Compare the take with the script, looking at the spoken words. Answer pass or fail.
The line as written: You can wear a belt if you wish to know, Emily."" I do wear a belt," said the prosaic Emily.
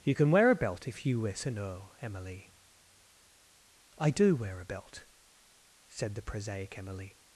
pass